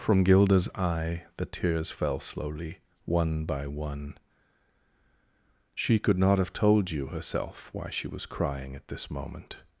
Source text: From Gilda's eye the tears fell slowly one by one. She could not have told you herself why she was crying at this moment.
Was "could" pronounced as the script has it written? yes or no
yes